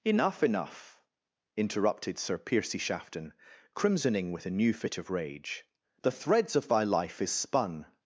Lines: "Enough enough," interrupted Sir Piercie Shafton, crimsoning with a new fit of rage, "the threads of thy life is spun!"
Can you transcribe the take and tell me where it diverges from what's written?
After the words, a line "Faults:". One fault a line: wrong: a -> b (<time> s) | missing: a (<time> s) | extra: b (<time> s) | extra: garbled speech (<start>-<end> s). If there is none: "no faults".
"Enough enough," interrupted Sir Piercie Shafton, crimsoning with a new fit of rage, "the threads of thy life is spun!"
Faults:
no faults